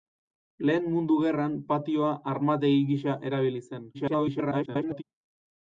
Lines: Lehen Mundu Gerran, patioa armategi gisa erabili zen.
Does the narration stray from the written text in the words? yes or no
yes